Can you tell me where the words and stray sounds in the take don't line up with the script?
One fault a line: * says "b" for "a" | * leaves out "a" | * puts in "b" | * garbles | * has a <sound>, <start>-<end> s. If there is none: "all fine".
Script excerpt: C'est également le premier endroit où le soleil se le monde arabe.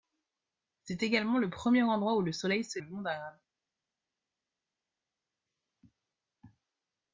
all fine